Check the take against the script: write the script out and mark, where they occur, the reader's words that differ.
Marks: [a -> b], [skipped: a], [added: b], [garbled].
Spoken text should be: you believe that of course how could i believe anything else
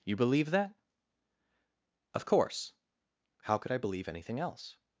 you believe that of course how could i believe anything else